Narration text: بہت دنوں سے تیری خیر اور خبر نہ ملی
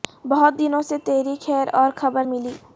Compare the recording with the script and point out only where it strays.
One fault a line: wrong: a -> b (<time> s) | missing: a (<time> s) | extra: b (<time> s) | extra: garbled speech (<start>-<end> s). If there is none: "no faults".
missing: نہ (2.2 s)